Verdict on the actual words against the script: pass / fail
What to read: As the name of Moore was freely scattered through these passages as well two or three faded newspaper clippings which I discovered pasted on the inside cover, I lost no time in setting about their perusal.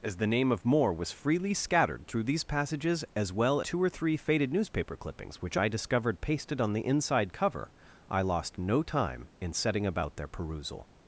pass